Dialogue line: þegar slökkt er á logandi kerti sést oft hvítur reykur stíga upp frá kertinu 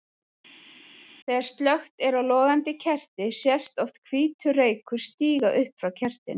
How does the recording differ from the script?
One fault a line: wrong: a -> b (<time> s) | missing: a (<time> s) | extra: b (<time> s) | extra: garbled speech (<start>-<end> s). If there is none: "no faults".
no faults